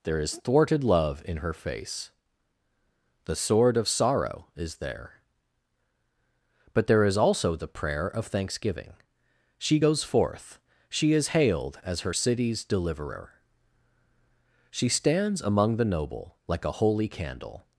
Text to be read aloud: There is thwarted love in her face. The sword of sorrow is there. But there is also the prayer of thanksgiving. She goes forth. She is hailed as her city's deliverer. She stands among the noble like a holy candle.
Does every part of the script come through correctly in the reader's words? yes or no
yes